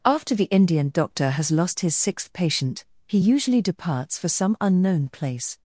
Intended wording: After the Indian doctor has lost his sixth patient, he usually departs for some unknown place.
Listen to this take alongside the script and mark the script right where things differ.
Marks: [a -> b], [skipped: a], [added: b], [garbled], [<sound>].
After the Indian doctor has lost his sixth patient, he usually departs for some unknown place.